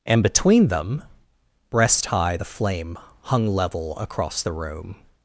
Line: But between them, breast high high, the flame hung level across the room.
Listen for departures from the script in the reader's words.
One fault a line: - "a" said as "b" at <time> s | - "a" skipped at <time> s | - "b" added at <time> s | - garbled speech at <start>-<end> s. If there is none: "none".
- "But" said as "And" at 0.1 s
- "high" skipped at 2.4 s